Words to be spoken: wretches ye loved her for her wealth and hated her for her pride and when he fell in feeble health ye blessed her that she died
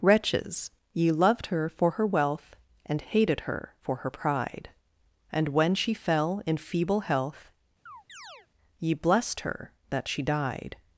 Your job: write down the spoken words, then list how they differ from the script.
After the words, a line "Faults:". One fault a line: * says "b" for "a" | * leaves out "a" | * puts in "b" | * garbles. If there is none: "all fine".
wretches ye loved her for her wealth and hated her for her pride and when she fell in feeble health ye blessed her that she died
Faults:
* says "she" for "he"